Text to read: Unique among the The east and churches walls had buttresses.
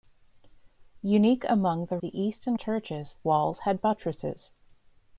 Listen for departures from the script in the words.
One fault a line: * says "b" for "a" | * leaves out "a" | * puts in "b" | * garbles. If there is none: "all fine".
all fine